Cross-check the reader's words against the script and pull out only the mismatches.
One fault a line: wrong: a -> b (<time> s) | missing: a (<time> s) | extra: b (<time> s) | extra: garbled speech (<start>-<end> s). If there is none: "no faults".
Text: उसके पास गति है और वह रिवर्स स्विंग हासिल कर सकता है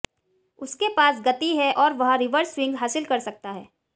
no faults